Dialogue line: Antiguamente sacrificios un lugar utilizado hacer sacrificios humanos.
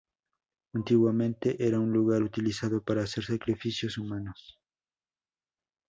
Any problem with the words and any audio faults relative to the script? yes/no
yes